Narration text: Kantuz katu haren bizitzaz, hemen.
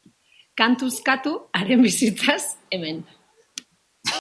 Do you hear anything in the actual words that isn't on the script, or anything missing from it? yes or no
no